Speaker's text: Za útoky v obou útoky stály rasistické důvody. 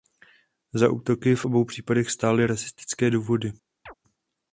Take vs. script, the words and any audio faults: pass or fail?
fail